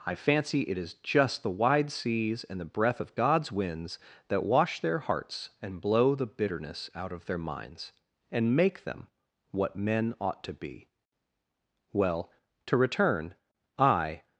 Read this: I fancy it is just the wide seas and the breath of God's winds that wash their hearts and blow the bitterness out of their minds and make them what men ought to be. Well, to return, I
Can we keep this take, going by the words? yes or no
yes